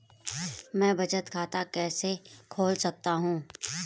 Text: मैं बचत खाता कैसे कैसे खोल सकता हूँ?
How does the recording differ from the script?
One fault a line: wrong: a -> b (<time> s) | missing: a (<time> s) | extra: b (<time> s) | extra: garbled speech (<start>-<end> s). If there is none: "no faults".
missing: कैसे (2.1 s)